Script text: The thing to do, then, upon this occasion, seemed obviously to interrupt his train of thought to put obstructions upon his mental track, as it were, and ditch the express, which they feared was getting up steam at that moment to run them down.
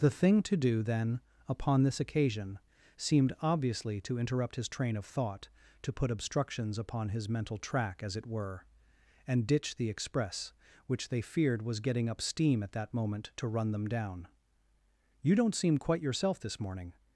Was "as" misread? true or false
false